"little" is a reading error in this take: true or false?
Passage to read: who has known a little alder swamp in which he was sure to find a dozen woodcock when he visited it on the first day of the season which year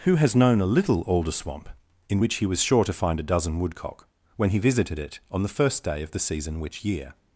false